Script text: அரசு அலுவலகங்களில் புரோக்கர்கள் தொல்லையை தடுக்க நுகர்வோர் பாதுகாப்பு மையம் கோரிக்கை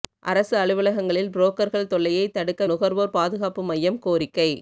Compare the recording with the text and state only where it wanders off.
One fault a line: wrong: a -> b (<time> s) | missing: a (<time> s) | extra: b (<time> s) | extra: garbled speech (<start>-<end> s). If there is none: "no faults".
no faults